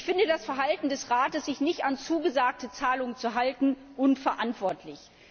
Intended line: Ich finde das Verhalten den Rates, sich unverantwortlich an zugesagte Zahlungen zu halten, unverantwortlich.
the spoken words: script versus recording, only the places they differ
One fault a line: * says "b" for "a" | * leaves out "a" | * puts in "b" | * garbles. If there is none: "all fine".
* says "des" for "den"
* says "nicht" for "unverantwortlich"